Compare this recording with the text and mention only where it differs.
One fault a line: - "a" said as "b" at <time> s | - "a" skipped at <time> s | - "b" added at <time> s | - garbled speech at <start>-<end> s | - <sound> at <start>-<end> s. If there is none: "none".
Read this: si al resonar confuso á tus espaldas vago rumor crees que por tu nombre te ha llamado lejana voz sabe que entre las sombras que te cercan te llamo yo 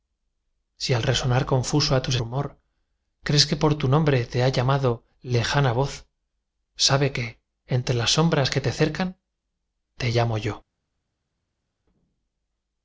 - "espaldas vago" skipped at 2.1 s